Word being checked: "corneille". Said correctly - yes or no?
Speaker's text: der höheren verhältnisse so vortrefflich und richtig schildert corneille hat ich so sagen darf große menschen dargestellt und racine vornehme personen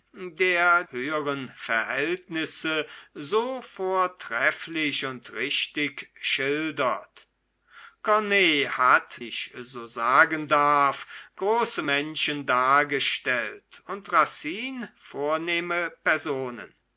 yes